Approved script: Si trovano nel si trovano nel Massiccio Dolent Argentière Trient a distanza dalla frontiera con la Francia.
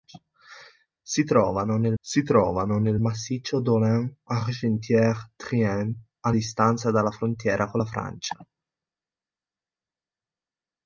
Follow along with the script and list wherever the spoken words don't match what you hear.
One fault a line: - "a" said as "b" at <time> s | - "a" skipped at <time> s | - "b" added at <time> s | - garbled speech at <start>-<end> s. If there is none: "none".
none